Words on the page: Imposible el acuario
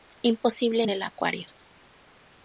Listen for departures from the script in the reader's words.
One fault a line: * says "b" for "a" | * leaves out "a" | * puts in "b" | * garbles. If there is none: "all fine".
* puts in "en"